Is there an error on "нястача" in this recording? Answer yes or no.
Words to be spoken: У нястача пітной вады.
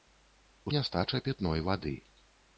no